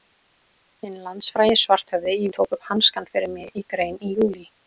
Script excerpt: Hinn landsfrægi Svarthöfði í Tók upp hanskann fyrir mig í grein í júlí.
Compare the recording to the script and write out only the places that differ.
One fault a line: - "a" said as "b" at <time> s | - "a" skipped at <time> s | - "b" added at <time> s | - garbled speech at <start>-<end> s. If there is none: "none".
none